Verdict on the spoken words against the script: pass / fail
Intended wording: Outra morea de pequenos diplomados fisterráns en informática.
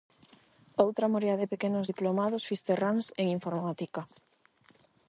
pass